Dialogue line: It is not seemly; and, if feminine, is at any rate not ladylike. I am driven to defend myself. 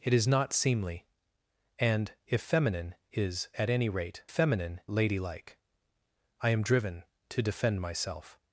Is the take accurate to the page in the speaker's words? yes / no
no